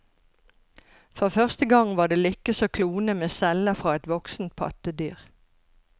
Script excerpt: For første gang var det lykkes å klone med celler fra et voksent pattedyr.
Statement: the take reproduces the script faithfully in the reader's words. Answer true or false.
true